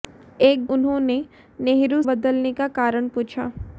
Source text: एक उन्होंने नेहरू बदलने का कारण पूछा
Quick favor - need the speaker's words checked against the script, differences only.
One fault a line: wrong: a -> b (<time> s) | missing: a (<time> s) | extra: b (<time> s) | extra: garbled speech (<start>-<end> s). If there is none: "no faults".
no faults